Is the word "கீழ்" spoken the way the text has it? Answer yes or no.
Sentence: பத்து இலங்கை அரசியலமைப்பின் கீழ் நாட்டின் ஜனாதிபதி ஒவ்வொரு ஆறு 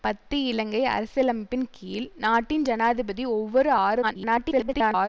yes